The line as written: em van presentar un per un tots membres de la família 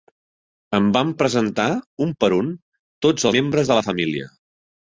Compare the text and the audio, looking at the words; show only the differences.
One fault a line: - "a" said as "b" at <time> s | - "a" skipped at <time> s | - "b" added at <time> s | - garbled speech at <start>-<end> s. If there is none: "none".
none